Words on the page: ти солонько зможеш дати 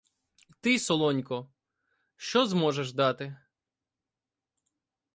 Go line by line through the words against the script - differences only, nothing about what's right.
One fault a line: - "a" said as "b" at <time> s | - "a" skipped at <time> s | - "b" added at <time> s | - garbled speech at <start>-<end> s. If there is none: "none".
- "що" added at 2.1 s